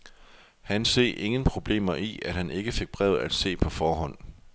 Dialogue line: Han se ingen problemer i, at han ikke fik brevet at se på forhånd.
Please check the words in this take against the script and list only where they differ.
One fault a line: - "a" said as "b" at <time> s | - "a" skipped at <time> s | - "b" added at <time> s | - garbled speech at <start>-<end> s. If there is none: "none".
none